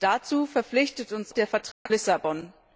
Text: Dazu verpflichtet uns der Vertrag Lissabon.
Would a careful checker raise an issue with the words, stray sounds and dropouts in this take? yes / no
yes